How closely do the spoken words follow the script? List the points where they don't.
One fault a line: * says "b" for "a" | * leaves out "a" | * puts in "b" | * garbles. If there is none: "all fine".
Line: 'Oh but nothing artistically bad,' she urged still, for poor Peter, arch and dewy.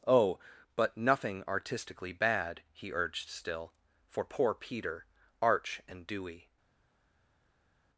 * says "he" for "she"